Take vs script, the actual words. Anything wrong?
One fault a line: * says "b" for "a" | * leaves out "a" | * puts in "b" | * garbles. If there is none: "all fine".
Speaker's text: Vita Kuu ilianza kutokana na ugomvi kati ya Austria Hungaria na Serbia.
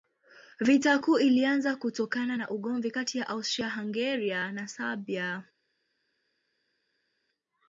all fine